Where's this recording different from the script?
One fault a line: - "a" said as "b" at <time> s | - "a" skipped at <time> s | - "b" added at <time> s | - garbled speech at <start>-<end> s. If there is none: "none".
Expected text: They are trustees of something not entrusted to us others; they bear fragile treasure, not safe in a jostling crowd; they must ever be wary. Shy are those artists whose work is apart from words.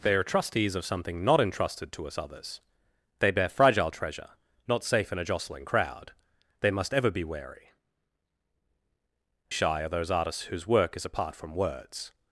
none